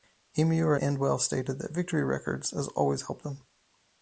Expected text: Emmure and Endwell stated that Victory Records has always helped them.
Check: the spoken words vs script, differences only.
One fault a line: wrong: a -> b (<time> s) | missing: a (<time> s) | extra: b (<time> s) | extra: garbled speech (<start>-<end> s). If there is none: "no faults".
missing: and (0.8 s)